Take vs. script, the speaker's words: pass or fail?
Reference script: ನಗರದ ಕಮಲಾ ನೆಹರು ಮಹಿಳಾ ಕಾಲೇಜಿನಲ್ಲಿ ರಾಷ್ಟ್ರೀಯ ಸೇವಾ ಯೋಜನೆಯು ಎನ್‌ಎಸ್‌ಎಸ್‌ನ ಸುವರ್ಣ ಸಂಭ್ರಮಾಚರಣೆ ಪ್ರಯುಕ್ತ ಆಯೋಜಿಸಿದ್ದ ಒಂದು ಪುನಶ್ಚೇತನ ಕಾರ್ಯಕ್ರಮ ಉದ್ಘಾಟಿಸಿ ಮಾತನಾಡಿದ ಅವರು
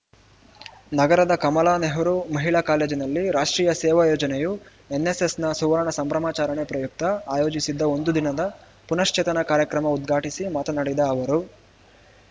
fail